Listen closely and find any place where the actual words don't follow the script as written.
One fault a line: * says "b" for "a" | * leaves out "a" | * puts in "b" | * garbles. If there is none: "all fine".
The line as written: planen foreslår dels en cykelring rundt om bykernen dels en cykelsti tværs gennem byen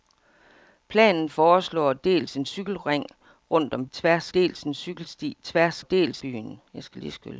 * says "tværs" for "bykernen"
* says "dels" for "gennem"